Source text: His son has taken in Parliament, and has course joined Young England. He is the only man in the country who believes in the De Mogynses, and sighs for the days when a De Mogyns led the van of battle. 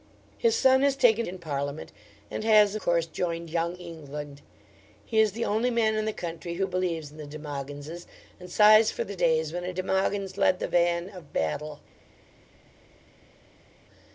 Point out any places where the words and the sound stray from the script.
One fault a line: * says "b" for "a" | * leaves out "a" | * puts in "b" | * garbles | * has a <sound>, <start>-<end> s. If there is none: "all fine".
all fine